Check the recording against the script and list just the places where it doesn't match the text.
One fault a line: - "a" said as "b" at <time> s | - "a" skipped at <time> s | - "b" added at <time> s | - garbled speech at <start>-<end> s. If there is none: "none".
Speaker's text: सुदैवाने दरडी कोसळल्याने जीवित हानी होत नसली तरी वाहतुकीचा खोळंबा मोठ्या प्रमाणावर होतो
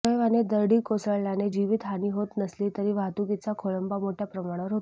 none